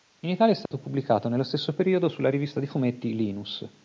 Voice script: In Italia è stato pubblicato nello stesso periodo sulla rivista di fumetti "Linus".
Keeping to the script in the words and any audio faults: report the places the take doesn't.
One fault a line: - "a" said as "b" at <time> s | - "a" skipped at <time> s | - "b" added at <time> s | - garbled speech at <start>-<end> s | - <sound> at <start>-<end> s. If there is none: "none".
- dropout at 0.7-0.7 s